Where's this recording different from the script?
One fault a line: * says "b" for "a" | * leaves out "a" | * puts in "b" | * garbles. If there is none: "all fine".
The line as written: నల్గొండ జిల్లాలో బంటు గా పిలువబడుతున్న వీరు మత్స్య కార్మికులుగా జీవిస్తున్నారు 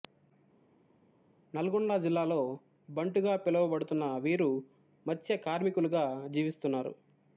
all fine